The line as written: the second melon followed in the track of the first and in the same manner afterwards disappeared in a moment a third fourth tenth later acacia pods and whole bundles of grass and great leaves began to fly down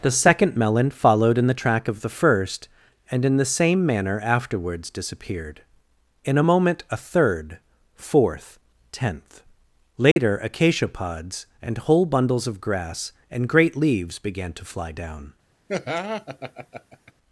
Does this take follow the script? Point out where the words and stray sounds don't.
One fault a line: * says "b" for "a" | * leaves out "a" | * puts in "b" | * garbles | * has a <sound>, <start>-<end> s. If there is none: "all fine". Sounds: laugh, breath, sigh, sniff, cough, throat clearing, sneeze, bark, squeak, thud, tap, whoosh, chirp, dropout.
* has a dropout, 10.1-10.2 s
* has a laugh, 15.7-17.1 s